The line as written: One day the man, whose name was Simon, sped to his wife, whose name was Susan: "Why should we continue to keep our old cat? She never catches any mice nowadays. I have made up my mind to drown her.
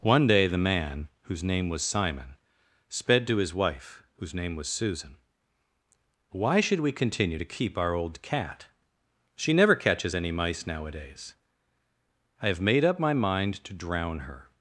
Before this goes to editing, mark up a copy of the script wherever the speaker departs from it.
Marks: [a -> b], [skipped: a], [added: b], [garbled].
One day the man, whose name was Simon, sped to his wife, whose name was Susan: "Why should we continue to keep our old cat? She never catches any mice nowadays. I have made up my mind to drown her.